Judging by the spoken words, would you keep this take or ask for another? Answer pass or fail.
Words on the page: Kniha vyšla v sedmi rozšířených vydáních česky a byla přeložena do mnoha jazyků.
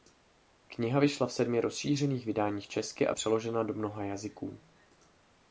fail